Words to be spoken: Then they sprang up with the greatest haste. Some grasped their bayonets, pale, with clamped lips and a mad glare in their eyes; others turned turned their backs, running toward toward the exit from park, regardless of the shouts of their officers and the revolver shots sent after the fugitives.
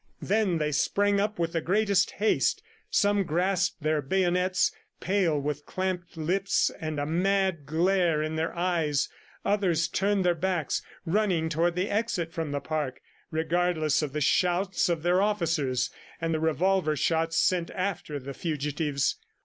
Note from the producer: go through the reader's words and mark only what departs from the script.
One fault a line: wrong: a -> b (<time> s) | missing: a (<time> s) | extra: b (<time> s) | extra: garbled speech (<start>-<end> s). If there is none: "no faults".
missing: turned (10.2 s)
missing: toward (11.8 s)
extra: the (12.5 s)